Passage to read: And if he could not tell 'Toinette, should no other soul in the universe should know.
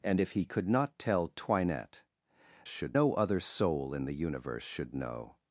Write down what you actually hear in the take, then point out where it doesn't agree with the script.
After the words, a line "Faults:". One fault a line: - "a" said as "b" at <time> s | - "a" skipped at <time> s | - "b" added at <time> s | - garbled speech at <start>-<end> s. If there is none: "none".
And if he could not tell 'Toinette, should no other soul in the universe should know.
Faults:
none